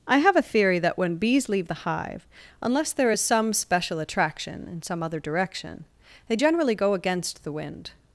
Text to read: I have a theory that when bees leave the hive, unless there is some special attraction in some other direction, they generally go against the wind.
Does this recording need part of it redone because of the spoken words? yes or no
no